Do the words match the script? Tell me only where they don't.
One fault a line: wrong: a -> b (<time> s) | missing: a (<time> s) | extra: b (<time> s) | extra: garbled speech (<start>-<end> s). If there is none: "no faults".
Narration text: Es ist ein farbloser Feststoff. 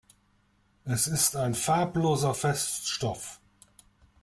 no faults